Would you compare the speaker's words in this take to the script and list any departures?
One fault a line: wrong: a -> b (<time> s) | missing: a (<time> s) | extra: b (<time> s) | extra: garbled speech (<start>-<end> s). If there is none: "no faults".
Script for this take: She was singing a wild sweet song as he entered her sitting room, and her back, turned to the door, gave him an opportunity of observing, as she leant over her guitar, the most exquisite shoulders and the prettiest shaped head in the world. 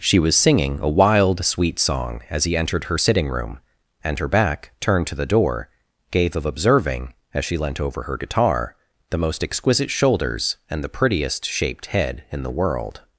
missing: him an opportunity (6.4 s)